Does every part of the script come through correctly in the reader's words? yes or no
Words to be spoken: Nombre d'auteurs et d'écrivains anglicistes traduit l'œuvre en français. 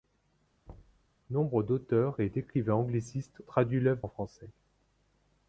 yes